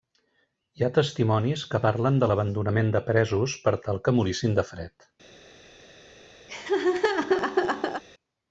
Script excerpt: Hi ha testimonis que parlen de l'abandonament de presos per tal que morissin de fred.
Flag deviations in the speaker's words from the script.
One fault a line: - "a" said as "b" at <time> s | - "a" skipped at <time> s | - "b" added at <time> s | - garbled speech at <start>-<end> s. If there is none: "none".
none